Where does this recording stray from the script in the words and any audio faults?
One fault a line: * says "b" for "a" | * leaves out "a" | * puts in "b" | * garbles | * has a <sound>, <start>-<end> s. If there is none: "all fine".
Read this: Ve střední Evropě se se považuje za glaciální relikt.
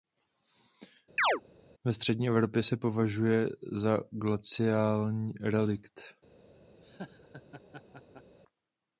* has a chirp, 1.2-1.4 s
* leaves out "se"
* has a laugh, 6.8-8.4 s